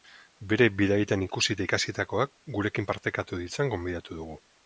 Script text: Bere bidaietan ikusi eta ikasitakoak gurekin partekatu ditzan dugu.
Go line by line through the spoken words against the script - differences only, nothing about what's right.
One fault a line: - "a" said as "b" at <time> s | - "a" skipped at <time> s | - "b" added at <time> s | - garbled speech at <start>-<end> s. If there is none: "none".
- "gonbidatu" added at 3.8 s